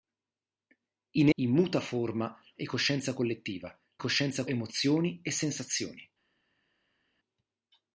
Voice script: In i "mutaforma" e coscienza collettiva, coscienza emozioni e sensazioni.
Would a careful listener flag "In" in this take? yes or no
no